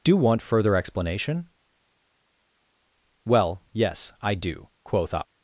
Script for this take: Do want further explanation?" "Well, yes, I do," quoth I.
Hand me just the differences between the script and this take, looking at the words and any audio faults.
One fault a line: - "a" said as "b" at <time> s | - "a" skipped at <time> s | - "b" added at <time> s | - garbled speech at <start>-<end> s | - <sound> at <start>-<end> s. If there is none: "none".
none